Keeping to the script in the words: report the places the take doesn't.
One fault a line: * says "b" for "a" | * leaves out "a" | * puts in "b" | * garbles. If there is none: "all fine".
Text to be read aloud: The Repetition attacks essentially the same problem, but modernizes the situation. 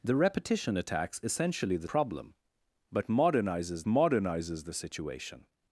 * leaves out "same"
* puts in "modernizes"